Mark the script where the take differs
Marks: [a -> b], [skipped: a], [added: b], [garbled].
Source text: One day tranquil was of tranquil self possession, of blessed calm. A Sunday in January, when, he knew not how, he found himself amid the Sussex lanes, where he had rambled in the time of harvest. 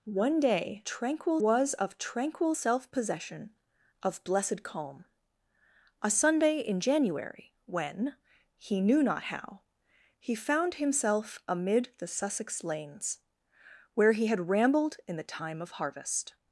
One day tranquil was of tranquil self possession, of blessed calm. A Sunday in January, when, he knew not how, he found himself amid the Sussex lanes, where he had rambled in the time of harvest.